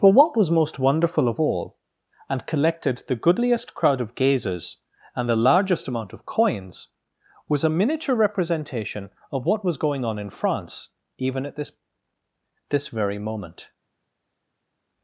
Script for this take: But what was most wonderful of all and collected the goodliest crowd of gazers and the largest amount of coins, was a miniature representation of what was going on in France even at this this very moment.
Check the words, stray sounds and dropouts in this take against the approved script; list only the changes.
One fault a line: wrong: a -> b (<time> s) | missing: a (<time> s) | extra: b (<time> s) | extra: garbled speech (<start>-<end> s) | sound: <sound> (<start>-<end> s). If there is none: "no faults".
no faults